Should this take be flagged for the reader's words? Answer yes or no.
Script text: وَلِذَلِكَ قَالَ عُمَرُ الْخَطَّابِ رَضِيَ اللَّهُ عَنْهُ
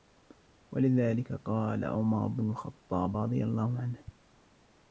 yes